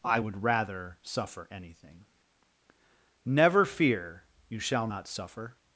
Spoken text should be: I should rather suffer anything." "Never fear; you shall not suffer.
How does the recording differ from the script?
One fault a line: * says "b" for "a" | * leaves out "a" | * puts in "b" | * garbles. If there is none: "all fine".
* says "would" for "should"